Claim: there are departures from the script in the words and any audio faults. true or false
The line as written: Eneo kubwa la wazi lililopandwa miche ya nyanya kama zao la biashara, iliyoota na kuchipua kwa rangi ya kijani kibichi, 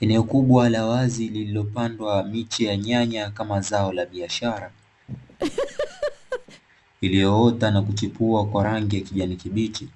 true